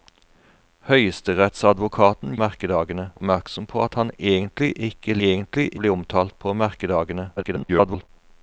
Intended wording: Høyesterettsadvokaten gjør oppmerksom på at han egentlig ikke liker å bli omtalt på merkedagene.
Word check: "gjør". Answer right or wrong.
wrong